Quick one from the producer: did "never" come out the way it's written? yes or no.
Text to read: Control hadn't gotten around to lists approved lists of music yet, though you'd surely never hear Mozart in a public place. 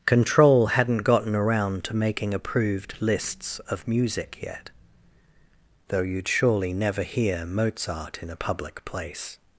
yes